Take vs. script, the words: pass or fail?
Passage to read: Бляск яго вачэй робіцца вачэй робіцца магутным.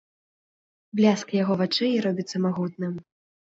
fail